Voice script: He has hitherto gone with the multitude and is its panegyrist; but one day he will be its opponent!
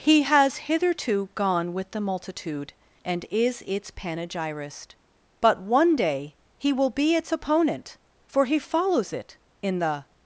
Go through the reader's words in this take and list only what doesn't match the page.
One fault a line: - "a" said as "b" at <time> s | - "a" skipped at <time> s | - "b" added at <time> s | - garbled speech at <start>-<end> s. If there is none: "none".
- "For he follows it in the" added at 8.2 s